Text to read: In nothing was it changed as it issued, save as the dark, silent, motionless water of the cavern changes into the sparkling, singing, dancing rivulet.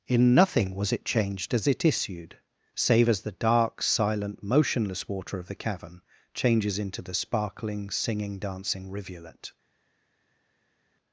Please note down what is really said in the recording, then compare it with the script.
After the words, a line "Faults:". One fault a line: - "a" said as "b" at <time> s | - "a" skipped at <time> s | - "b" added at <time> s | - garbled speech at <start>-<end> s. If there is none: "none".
In nothing was it changed as it issued, save as the dark, silent, motionless water of the cavern changes into the sparkling, singing, dancing rivulet.
Faults:
none